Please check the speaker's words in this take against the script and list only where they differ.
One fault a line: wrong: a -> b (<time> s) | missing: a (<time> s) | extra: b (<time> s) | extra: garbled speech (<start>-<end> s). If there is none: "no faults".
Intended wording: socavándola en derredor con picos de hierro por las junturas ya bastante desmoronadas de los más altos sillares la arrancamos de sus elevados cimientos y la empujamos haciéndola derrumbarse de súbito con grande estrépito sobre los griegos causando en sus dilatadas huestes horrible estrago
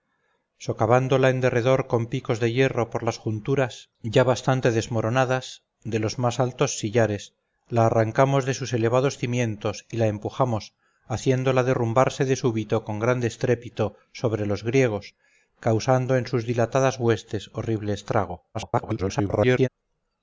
extra: garbled speech (18.5-19.7 s)